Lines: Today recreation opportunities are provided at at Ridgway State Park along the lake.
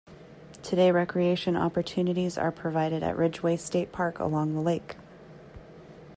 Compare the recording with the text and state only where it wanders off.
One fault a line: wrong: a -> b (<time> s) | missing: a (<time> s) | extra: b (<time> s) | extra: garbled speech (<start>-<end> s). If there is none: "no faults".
missing: at (3.2 s)